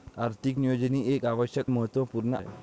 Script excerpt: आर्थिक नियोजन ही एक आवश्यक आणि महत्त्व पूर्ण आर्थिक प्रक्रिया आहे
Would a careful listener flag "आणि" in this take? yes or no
yes